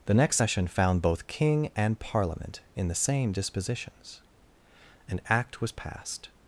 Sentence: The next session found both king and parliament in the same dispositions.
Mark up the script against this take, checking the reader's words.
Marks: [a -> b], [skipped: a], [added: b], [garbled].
The next session found both king and parliament in the same dispositions. [added: An act was passed]